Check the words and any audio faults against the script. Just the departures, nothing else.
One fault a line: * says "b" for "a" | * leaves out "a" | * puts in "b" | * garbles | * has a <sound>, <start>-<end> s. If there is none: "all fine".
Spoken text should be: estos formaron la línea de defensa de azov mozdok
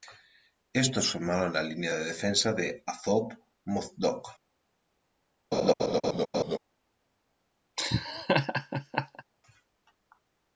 * has a laugh, 5.5-6.6 s
* has a laugh, 7.8-9.2 s